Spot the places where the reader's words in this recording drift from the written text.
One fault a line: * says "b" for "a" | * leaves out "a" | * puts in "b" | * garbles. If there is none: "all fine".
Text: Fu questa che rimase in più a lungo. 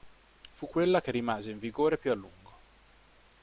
* says "quella" for "questa"
* puts in "vigore"